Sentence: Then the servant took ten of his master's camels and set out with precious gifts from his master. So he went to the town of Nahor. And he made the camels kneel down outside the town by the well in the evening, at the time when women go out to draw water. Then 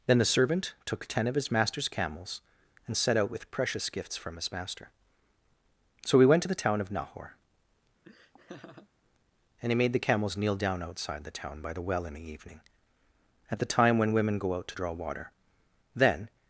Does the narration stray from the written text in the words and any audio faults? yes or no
yes